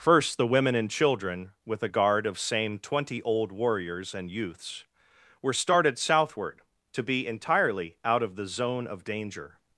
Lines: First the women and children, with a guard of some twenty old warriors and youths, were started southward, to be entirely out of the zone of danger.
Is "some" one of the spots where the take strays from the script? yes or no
yes